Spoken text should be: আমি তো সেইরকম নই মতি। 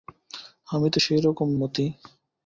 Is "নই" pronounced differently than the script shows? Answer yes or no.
yes